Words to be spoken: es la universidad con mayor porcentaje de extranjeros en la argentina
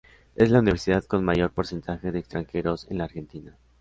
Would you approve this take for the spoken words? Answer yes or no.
yes